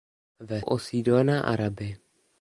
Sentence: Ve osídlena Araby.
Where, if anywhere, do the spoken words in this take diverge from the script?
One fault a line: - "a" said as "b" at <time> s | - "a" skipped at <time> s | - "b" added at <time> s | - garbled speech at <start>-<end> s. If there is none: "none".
none